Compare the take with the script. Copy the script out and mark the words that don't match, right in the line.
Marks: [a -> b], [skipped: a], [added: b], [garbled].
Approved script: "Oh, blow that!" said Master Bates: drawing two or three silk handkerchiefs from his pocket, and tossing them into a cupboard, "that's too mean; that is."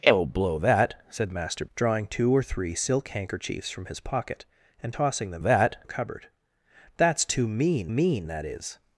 "Oh, blow that!" said Master [skipped: Bates:] drawing two or three silk handkerchiefs from his pocket, and tossing them [into -> that] a cupboard, "that's too mean; [added: mean] that is."